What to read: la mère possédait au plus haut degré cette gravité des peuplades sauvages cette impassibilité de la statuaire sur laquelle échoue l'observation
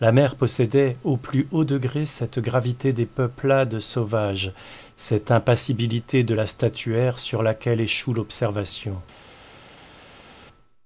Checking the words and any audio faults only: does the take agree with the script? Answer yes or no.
yes